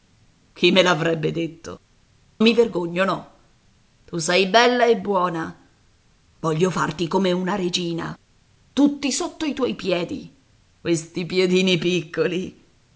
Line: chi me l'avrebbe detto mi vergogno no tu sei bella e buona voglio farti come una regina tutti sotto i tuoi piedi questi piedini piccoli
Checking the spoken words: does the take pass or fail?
pass